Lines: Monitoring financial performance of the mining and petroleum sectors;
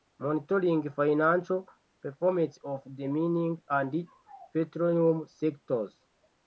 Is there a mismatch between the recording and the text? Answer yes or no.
no